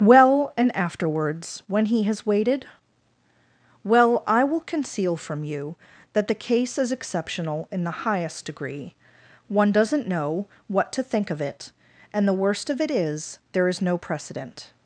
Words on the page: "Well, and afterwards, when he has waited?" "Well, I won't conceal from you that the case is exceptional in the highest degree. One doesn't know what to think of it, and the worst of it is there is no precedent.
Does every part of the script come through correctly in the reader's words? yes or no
no